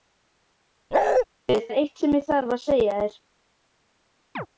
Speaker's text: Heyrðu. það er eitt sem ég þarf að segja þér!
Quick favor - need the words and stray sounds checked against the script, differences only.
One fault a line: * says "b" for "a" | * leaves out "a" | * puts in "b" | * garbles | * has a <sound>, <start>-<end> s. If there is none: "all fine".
* has a bark, 0.9-1.3 s
* leaves out "það"
* has a chirp, 4.4-4.5 s